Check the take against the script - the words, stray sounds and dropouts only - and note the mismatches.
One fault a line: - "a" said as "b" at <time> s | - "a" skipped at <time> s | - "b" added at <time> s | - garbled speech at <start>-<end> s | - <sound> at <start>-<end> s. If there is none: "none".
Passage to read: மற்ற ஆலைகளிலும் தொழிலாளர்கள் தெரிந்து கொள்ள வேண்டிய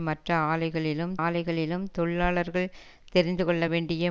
- "ஆலைகளிலும்" added at 1.2 s